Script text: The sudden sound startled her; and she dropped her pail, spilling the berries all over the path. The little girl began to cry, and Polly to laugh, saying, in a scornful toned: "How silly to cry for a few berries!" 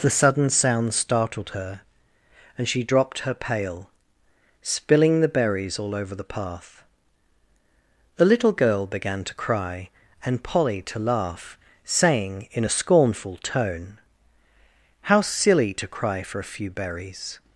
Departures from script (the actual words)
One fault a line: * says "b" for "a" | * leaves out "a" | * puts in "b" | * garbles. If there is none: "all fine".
* says "tone" for "toned"